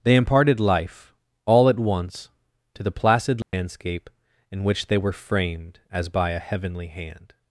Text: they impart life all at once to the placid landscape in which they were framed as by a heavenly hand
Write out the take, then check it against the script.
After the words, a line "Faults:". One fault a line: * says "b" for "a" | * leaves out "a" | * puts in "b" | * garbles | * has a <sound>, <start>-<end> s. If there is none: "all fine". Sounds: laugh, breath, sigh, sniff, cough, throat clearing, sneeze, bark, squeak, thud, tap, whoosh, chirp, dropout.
they imparted life all at once to the placid landscape in which they were framed as by a heavenly hand
Faults:
* says "imparted" for "impart"
* has a dropout, 3.4-3.5 s